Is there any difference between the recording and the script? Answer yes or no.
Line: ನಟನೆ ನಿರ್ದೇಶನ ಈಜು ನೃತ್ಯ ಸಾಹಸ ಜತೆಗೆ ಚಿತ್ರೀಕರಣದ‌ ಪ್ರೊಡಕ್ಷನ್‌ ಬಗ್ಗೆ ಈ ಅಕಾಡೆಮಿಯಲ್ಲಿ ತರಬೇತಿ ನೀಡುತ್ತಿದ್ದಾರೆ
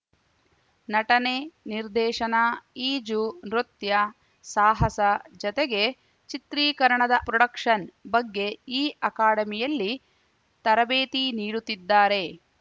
no